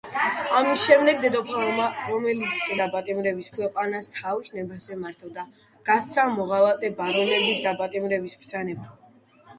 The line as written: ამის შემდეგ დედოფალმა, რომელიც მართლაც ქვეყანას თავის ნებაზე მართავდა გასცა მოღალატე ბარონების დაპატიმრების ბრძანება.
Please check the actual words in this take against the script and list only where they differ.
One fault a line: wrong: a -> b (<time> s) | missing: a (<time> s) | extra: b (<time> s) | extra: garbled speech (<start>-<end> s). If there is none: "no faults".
wrong: მართლაც -> დაპატიმრების (2.8 s)